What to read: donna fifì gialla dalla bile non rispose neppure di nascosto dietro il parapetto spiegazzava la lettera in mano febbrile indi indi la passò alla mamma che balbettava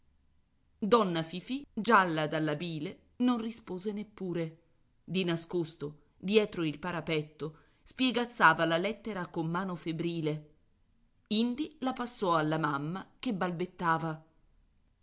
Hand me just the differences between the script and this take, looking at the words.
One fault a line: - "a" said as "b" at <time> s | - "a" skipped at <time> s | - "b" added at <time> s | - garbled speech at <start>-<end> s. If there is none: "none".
- "in" said as "con" at 9.3 s
- "indi" skipped at 11.8 s